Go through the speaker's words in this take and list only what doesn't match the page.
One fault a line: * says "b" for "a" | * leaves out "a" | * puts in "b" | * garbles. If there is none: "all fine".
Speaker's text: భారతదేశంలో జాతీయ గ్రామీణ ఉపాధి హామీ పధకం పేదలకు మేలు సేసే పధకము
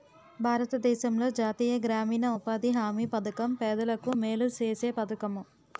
all fine